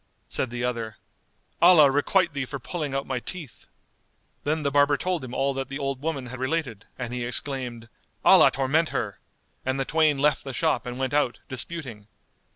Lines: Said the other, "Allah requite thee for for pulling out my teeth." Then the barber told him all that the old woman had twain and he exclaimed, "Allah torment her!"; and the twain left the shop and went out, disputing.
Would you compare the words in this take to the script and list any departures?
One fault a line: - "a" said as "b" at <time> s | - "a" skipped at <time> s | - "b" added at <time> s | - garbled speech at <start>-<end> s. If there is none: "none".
- "for" skipped at 2.6 s
- "twain" said as "related" at 6.4 s